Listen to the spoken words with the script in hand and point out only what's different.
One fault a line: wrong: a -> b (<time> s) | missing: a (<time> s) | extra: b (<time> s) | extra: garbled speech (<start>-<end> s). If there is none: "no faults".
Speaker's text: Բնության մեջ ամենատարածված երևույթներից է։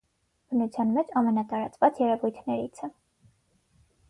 no faults